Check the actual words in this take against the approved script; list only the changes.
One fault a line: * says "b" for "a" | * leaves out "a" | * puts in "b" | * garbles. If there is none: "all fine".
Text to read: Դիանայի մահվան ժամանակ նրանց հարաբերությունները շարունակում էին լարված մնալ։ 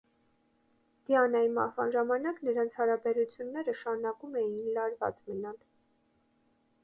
all fine